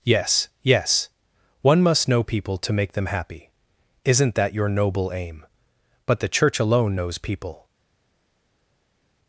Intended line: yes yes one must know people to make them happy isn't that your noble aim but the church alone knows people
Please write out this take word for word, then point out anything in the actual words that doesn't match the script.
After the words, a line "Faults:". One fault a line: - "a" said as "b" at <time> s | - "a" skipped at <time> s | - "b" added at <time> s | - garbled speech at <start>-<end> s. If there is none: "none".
yes yes one must know people to make them happy isn't that your noble aim but the church alone knows people
Faults:
none